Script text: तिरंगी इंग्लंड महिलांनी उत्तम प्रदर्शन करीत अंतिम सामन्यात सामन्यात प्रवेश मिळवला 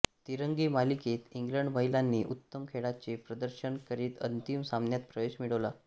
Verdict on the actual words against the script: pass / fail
fail